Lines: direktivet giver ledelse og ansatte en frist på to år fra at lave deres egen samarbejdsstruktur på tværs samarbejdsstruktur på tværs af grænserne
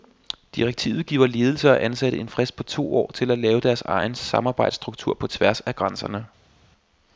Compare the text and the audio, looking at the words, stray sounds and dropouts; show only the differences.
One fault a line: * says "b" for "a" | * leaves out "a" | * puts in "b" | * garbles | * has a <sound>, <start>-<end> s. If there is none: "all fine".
* says "til" for "fra"
* leaves out "samarbejdsstruktur på tværs"